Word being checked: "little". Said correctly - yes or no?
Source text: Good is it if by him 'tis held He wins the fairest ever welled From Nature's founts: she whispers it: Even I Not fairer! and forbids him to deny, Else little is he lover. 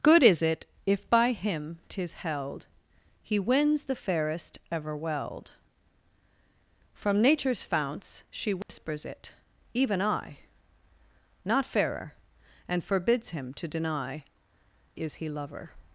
no